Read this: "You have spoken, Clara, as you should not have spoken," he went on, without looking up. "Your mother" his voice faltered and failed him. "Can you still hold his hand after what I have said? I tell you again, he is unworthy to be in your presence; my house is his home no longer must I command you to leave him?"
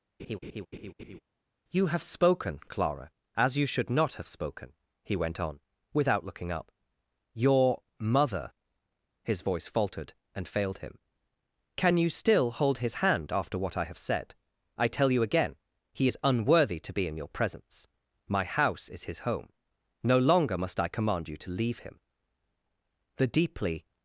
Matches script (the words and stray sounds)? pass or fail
fail